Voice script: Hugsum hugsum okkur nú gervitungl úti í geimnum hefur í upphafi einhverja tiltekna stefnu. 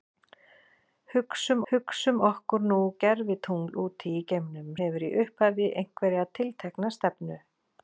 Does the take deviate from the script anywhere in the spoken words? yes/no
no